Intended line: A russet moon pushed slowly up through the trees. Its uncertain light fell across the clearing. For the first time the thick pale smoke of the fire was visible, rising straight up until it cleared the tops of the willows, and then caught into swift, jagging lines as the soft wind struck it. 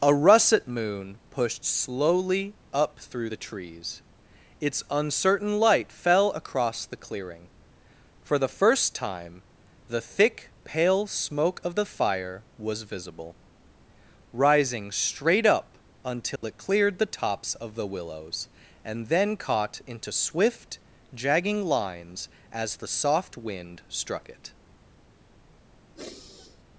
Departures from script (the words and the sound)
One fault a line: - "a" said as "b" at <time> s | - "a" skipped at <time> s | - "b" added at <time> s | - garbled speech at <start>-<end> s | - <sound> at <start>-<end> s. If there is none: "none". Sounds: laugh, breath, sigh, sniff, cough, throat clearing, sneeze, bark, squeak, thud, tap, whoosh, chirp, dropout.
- dropout at 16.4-16.4 s
- sigh at 25.9-26.6 s